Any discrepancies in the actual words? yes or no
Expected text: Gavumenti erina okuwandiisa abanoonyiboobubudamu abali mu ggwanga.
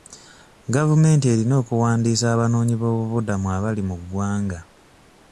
no